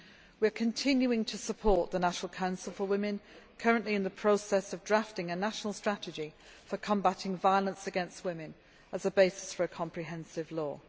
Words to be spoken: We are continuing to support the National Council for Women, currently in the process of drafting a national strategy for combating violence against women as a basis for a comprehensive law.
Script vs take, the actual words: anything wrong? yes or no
no